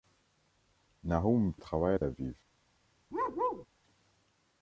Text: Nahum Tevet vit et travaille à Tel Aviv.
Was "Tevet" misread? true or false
true